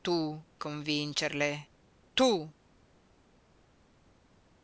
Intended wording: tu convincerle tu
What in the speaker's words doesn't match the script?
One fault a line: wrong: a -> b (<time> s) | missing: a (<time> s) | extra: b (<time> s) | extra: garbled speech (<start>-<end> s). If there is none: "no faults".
no faults